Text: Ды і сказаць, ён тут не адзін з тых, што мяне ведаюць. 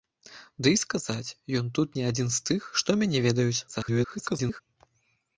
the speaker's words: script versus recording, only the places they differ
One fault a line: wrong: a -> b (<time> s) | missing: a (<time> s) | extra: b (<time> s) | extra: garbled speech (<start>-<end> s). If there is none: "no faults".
extra: garbled speech (3.7-4.6 s)